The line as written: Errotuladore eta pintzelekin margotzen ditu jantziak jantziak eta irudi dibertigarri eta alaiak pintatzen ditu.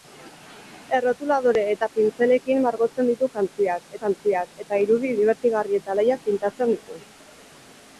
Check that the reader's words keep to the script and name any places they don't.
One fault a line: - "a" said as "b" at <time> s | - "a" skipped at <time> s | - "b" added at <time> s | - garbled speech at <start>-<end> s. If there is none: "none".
none